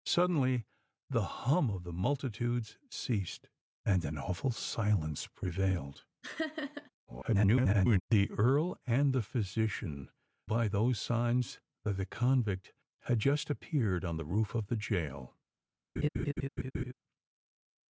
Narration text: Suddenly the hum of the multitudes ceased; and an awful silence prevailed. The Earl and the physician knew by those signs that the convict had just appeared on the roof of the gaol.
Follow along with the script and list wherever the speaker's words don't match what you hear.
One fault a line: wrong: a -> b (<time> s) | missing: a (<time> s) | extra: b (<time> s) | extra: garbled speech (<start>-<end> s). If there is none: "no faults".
extra: garbled speech (7.1-8.0 s)
missing: knew (10.1 s)